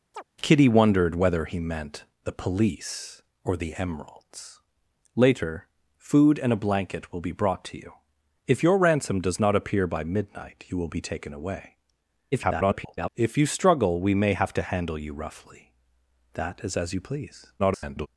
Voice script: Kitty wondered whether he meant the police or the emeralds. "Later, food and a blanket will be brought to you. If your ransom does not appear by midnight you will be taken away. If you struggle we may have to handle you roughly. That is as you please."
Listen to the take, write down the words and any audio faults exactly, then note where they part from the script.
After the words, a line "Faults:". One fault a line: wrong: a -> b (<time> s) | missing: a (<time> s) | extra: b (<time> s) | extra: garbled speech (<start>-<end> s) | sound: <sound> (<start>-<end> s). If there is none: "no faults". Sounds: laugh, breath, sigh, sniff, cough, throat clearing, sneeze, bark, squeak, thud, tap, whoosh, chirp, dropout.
Kitty wondered whether he meant the police or the emeralds. "Later, food and a blanket will be brought to you. If your ransom does not appear by midnight you will be taken away. [garbled] If you struggle we may have to handle you roughly. That is as you please." [garbled]
Faults:
sound: chirp (0.1-0.2 s)
extra: garbled speech (12.3-13.1 s)
extra: garbled speech (17.6-18.1 s)